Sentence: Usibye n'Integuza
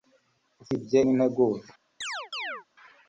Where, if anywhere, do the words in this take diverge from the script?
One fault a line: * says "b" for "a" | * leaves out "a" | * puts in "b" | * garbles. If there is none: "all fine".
all fine